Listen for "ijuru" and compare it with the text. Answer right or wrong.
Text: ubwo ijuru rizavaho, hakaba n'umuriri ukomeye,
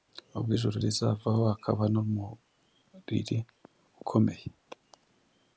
right